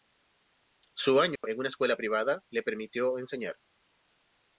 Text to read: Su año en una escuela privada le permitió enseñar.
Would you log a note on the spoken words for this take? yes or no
no